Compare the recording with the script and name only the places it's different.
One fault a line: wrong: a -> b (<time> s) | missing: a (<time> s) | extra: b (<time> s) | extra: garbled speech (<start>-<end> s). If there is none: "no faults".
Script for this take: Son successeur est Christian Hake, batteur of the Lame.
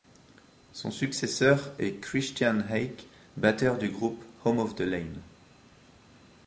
extra: du groupe Home (3.8 s)